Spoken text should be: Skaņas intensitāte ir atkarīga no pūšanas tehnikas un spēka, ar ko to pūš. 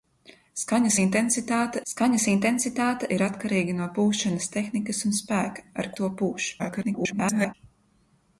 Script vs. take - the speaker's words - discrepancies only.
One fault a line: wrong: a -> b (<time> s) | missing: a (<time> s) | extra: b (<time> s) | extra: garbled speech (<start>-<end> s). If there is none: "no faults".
extra: skaņas intensitāte (1.9 s)
missing: ko (5.9 s)
extra: garbled speech (6.6-7.5 s)